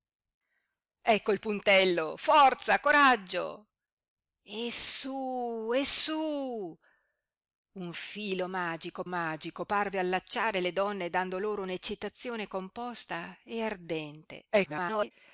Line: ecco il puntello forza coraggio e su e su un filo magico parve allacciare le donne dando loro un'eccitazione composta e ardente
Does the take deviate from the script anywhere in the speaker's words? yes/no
yes